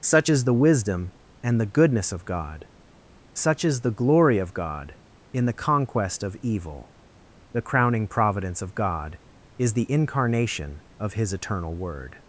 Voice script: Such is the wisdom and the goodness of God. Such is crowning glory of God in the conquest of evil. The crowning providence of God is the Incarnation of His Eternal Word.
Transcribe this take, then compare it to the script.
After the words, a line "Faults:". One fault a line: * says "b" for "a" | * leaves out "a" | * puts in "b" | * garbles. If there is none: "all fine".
Such is the wisdom and the goodness of God. Such is the glory of God in the conquest of evil. The crowning providence of God is the Incarnation of His Eternal Word.
Faults:
* says "the" for "crowning"